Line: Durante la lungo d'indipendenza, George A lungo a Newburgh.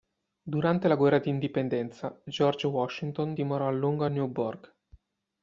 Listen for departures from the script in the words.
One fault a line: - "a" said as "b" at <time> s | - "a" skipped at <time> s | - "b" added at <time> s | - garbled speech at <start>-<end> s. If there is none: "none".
- "lungo" said as "guerra" at 0.9 s
- "Washington dimorò" added at 2.6 s